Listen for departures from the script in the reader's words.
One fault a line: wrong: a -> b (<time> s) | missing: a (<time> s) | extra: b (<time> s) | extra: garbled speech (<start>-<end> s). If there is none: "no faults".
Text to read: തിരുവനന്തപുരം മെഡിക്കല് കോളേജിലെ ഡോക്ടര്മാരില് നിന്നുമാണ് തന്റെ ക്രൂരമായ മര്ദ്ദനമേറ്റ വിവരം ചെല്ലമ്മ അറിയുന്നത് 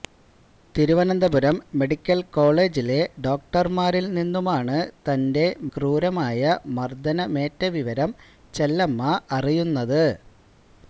no faults